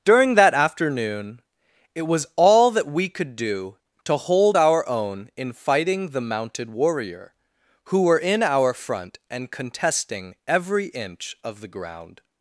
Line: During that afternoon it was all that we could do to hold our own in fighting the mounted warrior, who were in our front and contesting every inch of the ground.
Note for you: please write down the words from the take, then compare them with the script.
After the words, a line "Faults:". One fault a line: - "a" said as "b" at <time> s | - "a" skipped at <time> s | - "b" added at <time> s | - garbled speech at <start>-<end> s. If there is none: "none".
During that afternoon it was all that we could do to hold our own in fighting the mounted warrior, who were in our front and contesting every inch of the ground.
Faults:
none